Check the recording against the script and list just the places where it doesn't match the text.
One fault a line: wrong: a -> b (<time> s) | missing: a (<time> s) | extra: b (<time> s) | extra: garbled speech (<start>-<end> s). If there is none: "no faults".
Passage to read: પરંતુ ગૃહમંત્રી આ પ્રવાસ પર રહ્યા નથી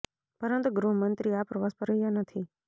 no faults